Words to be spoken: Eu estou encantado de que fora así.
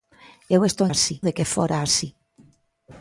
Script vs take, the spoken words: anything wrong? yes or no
yes